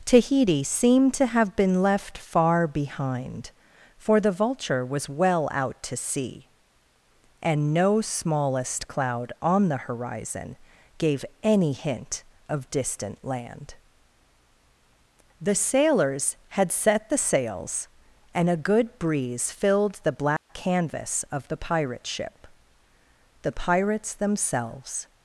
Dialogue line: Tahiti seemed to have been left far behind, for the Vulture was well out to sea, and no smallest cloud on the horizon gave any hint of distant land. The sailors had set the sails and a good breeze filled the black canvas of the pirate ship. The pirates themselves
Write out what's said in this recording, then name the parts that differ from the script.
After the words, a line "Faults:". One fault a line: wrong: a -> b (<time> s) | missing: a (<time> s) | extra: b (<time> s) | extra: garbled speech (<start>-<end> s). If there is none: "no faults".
Tahiti seemed to have been left far behind, for the Vulture was well out to sea, and no smallest cloud on the horizon gave any hint of distant land. The sailors had set the sails and a good breeze filled the black canvas of the pirate ship. The pirates themselves
Faults:
no faults